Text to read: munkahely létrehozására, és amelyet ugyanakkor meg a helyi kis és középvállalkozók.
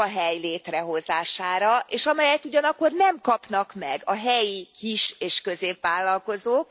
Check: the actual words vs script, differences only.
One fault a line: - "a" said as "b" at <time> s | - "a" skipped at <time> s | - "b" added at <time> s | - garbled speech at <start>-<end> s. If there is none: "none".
- "nem kapnak" added at 2.9 s